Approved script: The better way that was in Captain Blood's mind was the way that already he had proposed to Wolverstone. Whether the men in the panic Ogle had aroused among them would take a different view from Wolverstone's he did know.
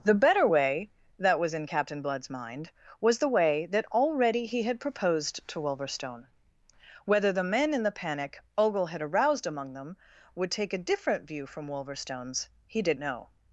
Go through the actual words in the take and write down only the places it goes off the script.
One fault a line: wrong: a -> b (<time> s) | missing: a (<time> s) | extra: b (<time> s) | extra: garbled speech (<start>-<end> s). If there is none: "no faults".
no faults